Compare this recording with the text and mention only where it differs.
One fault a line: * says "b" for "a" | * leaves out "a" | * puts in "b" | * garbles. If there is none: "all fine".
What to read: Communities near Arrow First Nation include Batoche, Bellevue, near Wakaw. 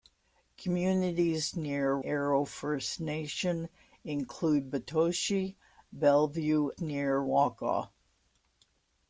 all fine